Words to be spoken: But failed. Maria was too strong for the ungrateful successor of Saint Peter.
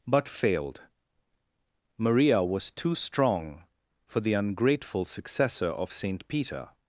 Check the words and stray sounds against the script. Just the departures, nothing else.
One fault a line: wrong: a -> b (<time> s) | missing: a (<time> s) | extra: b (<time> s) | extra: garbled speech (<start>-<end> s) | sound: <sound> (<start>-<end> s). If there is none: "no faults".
no faults